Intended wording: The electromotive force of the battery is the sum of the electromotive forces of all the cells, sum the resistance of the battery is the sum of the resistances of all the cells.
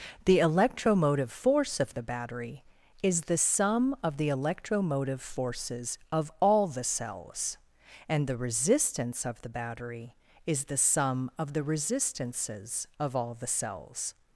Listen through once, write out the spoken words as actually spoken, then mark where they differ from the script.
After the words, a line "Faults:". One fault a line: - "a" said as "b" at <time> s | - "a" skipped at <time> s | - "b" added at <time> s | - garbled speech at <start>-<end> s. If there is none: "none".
The electromotive force of the battery is the sum of the electromotive forces of all the cells, and the resistance of the battery is the sum of the resistances of all the cells.
Faults:
- "sum" said as "and" at 8.1 s